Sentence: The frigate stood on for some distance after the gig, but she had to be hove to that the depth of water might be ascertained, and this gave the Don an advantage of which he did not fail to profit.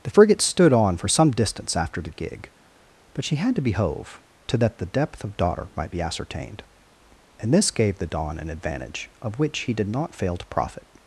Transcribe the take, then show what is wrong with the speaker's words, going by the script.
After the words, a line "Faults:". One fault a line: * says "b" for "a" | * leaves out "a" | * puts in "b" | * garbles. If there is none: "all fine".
The frigate stood on for some distance after the gig, but she had to be hove to that the depth of daughter might be ascertained, and this gave the Don an advantage of which he did not fail to profit.
Faults:
* says "daughter" for "water"